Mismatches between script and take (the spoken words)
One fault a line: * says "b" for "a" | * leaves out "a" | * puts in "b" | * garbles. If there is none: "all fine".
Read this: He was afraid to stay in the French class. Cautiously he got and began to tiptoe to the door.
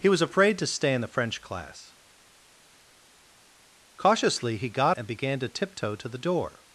all fine